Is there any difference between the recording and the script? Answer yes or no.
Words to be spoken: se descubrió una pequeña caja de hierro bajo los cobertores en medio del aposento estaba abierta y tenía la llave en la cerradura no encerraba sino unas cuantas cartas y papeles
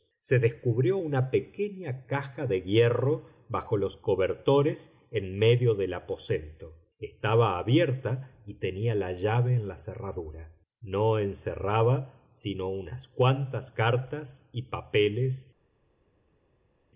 no